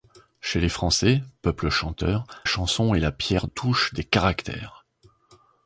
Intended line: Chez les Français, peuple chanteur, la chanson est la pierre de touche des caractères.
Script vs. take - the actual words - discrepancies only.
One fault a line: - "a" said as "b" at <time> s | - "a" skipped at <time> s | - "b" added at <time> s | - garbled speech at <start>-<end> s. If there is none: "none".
- "la" skipped at 2.2 s
- "de" skipped at 3.5 s